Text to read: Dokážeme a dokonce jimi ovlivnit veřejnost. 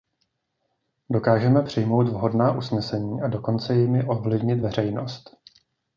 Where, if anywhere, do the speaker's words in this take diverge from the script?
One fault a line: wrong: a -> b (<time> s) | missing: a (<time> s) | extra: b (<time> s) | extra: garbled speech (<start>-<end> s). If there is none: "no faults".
extra: přijmout vhodná usnesení (1.6 s)